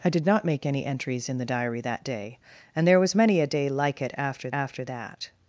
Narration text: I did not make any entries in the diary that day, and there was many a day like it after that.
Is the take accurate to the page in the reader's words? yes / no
no